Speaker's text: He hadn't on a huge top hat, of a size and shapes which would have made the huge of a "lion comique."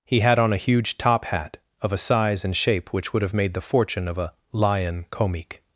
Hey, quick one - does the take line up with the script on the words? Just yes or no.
no